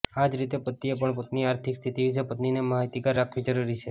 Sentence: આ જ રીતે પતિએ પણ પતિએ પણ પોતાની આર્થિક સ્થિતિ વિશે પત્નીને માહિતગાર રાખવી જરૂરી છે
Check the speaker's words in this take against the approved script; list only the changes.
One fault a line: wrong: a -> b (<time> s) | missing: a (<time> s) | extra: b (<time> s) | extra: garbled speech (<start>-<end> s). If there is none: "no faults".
missing: પતિએ પણ (1.1 s)